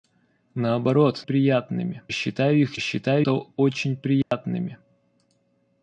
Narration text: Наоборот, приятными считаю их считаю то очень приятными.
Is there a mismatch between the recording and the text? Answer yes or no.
no